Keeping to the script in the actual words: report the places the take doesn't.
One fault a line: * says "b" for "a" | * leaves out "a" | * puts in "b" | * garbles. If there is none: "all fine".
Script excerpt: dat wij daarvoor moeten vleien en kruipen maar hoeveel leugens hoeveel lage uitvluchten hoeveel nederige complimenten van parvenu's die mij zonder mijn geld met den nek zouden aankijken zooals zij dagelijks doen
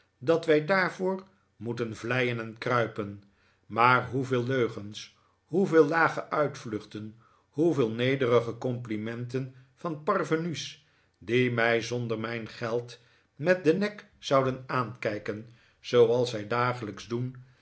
all fine